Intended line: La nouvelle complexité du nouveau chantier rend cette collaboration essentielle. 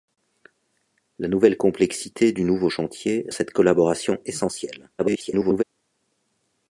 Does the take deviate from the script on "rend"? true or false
true